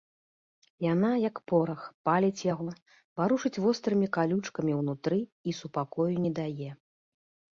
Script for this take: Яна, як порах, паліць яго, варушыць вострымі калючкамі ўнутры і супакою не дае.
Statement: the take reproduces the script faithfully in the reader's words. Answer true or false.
true